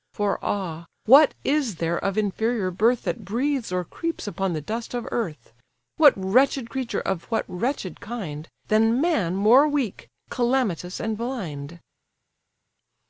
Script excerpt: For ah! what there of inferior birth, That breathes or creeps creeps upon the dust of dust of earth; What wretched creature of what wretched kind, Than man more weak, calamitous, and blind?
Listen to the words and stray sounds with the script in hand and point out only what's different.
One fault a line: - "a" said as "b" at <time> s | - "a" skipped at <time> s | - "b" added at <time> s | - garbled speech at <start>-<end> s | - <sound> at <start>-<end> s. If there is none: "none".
- "is" added at 1.4 s
- "creeps" skipped at 4.2 s
- "dust of" skipped at 5.1 s